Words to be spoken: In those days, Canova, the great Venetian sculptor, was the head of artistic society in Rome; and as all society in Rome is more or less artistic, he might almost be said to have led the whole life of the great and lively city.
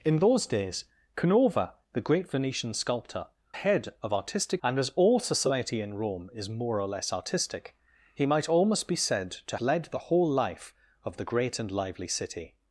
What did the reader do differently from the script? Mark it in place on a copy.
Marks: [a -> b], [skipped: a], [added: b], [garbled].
In those days, Canova, the great Venetian sculptor, [skipped: was the] head of artistic [skipped: society in Rome;] and as all society in Rome is more or less artistic, he might almost be said to [skipped: have] led the whole life of the great and lively city.